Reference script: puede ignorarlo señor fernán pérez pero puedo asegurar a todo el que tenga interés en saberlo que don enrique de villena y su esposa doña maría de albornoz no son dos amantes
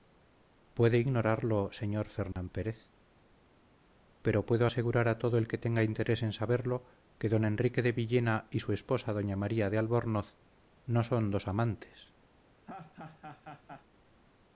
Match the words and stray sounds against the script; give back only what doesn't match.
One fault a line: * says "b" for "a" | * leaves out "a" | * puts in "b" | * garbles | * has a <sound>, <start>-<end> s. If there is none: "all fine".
* has a dropout, 2.3-2.4 s
* has a laugh, 12.7-13.9 s